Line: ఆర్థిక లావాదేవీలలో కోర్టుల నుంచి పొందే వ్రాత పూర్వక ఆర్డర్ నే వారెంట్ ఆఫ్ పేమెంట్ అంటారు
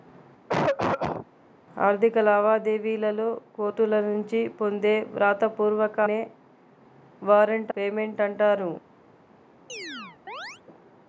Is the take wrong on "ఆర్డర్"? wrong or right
wrong